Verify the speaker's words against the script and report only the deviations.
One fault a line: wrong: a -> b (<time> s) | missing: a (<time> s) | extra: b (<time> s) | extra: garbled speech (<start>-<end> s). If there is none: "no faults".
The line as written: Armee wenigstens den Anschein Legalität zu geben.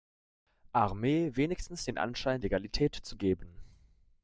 no faults